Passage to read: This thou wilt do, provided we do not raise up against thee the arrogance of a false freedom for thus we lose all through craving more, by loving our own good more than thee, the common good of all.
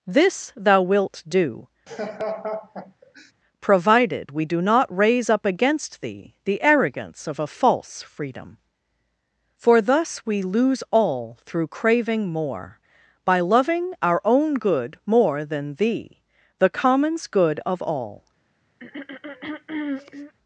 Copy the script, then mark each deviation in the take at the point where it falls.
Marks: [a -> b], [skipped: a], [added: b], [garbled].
This thou wilt do, provided we do not raise up against thee the arrogance of a false freedom for thus we lose all through craving more, by loving our own good more than thee, the [common -> commons] good of all.